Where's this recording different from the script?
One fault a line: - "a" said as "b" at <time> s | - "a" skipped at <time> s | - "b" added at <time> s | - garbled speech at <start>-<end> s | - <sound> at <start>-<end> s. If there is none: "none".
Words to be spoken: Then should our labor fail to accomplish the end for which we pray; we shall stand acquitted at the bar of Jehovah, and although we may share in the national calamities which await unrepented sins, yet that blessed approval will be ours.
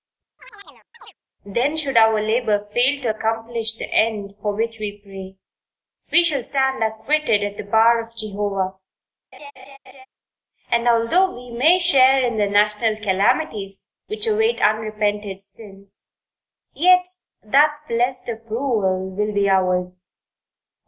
- chirp at 0.4-1.1 s
- laugh at 9.3-10.1 s